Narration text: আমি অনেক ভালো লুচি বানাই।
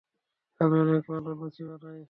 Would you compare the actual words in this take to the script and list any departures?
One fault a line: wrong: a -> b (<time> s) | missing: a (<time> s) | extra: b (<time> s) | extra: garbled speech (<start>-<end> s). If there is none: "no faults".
no faults